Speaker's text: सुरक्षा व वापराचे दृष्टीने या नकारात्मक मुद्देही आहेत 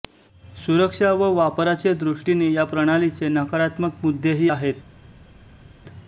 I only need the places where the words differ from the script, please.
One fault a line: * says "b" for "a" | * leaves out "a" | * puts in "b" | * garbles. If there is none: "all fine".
* puts in "प्रणालीचे"